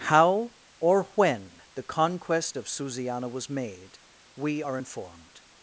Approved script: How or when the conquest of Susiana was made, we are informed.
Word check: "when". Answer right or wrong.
right